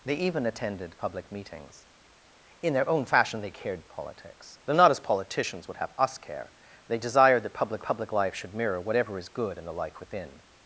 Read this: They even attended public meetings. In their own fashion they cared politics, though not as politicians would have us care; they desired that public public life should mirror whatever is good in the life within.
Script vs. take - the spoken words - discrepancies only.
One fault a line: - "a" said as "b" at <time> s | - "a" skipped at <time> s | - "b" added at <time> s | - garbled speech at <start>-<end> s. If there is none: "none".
none